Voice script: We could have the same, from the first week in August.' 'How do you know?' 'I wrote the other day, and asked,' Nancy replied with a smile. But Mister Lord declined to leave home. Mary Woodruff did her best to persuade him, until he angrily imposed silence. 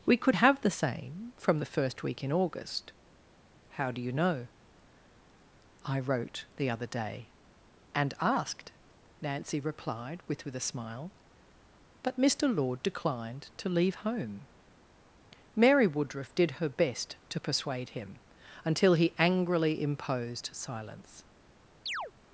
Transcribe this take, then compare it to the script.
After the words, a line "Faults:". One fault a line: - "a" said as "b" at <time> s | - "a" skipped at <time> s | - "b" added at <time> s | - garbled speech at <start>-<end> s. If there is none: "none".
We could have the same, from the first week in August.' 'How do you know?' 'I wrote the other day, and asked,' Nancy replied with with a smile. But Mister Lord declined to leave home. Mary Woodruff did her best to persuade him, until he angrily imposed silence.
Faults:
- "with" added at 10.5 s